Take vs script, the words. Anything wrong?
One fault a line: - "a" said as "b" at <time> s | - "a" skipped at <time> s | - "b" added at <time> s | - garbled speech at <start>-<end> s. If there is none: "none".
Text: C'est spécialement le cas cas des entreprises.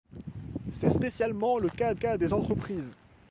none